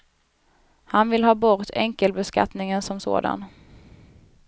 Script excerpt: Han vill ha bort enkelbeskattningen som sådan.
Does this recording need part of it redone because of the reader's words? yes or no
no